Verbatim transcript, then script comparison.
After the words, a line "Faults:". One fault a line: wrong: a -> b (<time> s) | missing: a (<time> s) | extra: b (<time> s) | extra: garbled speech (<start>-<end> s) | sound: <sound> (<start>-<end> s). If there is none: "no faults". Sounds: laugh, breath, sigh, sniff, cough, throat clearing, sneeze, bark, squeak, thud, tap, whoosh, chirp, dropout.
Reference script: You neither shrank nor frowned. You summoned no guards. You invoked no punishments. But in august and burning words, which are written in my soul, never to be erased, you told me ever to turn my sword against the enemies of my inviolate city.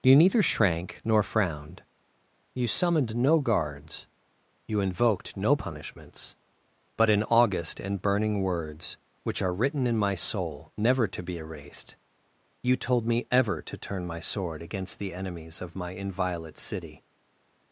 You neither shrank nor frowned. You summoned no guards. You invoked no punishments. But in august and burning words, which are written in my soul, never to be erased, you told me ever to turn my sword against the enemies of my inviolate city.
Faults:
no faults